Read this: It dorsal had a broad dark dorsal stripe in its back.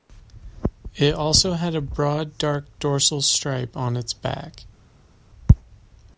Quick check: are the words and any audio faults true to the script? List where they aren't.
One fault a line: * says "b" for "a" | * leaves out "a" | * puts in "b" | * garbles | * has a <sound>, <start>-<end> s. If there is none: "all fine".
* says "also" for "dorsal"
* says "on" for "in"